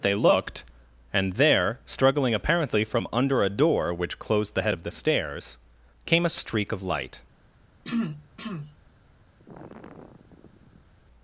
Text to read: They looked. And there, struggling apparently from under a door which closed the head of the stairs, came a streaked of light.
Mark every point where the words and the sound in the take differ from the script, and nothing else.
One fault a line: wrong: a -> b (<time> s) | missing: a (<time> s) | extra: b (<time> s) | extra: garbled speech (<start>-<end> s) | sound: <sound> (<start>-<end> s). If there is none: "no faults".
wrong: streaked -> streak (6.3 s)
sound: throat clearing (7.8-8.8 s)
sound: sigh (9.4-10.9 s)